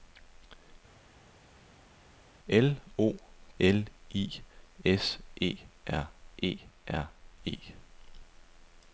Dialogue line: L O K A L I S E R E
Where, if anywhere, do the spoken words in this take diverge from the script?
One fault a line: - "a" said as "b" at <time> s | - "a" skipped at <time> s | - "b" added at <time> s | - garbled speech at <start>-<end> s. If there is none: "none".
- "K A" skipped at 3.1 s
- "R E" added at 6.9 s